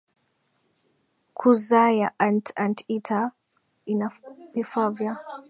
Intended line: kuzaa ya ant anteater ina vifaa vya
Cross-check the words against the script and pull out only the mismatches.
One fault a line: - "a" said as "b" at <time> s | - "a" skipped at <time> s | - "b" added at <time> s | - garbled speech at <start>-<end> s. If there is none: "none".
none